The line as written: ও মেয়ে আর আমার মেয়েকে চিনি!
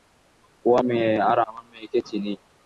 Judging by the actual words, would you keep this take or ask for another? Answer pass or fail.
pass